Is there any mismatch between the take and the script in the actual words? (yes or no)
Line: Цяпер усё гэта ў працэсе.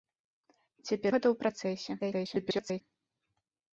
yes